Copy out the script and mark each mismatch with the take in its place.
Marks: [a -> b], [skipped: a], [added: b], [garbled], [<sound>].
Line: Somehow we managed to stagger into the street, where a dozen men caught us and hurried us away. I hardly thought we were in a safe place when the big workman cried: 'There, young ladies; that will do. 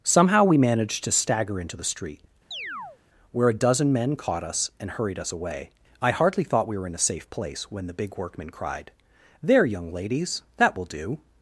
Somehow we managed to stagger into the street, [chirp] where a dozen men caught us and hurried us away. I hardly thought we were in a safe place when the big workman cried: 'There, young ladies; that will do.